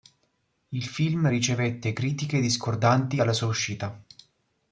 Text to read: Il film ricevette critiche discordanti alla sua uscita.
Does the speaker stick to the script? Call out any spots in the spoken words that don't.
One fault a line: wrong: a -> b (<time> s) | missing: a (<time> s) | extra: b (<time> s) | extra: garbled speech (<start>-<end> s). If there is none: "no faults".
no faults